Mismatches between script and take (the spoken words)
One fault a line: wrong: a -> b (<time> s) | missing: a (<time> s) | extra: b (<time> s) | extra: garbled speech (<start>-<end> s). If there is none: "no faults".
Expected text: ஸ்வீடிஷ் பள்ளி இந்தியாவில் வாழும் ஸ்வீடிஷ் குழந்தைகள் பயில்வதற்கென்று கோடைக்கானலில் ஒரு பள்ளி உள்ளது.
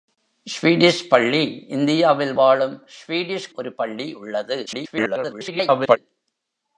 missing: குழந்தைகள் பயில்வதற்கென்று கோடைக்கானலில் (3.5 s)
extra: garbled speech (4.7-6.0 s)